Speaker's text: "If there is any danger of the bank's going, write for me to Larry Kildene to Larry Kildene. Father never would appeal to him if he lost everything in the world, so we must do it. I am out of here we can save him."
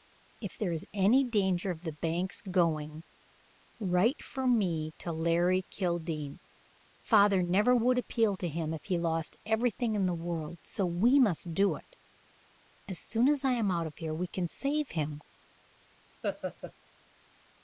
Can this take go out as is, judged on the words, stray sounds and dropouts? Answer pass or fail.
fail